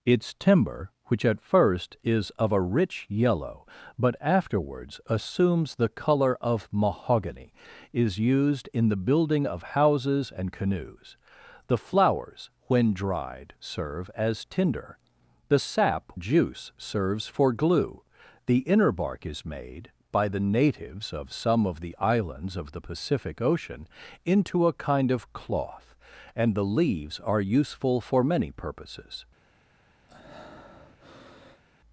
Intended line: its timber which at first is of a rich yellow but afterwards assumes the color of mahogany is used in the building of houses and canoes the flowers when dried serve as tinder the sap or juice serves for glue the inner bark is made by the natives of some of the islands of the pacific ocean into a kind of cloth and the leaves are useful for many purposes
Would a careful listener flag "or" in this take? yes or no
yes